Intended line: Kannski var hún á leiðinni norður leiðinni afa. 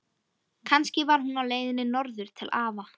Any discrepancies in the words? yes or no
yes